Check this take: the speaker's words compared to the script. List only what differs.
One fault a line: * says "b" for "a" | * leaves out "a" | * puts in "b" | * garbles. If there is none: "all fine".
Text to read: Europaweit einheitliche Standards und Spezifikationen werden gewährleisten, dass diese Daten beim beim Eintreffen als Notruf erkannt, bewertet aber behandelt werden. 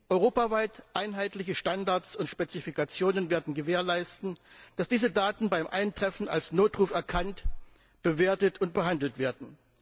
* leaves out "beim"
* says "und" for "aber"